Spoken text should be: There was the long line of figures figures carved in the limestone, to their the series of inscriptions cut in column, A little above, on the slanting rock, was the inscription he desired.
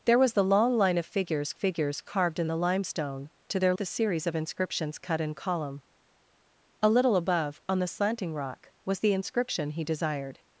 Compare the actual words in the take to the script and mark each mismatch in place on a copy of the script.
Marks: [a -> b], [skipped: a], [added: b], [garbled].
There was the long line of figures figures carved in the limestone, to their the series of inscriptions cut in column, A little above, on the slanting rock, was the inscription he desired.